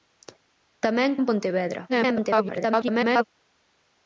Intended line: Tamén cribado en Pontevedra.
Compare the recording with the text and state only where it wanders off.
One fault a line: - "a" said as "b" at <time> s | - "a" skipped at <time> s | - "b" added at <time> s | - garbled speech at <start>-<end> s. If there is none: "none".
- "cribado" skipped at 1.1 s
- garbled speech at 1.9-3.2 s